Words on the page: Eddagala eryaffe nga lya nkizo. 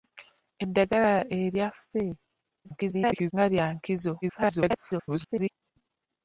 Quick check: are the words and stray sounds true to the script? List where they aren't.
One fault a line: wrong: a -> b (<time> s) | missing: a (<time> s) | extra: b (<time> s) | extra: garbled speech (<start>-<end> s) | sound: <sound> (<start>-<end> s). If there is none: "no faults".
extra: garbled speech (2.6-3.3 s)
extra: garbled speech (4.2-5.5 s)